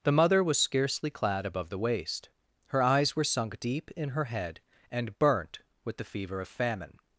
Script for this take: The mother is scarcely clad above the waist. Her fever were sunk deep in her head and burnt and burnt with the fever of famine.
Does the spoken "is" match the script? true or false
false